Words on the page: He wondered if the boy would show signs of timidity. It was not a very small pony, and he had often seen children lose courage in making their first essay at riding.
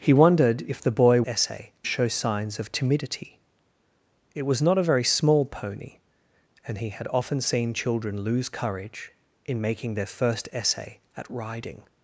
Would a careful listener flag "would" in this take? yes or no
yes